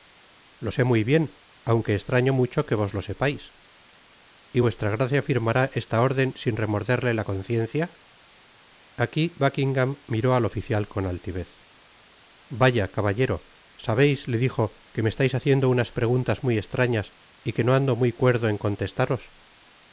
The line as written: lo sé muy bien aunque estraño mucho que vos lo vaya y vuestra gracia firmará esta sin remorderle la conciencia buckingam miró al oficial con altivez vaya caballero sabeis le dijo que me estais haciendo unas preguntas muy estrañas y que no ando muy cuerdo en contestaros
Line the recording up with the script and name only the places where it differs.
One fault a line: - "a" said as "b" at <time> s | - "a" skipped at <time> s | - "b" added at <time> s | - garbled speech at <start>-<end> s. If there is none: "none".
- "vaya" said as "sepais" at 3.0 s
- "órden" added at 6.0 s
- "aqui" added at 9.0 s